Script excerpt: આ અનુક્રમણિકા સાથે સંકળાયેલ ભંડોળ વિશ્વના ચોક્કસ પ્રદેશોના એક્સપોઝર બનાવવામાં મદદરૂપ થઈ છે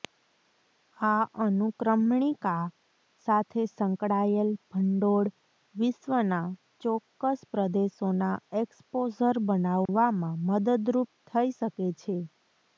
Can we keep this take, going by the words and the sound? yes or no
no